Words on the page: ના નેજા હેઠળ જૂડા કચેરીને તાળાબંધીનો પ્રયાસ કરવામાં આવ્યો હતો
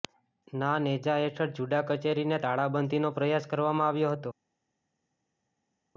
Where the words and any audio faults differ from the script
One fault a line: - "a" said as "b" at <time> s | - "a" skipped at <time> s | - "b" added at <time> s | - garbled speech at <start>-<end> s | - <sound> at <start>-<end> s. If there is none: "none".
none